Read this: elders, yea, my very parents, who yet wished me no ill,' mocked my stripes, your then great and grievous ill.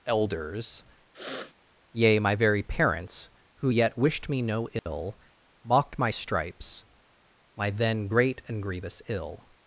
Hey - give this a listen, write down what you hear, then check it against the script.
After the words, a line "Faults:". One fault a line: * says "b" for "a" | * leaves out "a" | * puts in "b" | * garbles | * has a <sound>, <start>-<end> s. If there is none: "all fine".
elders, yea, my very parents, who yet wished me no ill,' mocked my stripes, my then great and grievous ill.
Faults:
* has a sniff, 1.1-1.5 s
* has a dropout, 4.8-4.9 s
* says "my" for "your"